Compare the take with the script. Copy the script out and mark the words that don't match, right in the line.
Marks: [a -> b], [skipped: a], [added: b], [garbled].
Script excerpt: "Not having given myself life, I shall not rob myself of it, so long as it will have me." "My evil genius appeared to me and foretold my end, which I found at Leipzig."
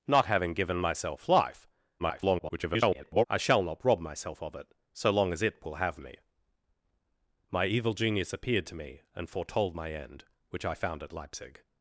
"Not having given myself life, [garbled] I shall not rob myself of it, so long as it will have me." "My evil genius appeared to me and foretold my end, which I found at Leipzig."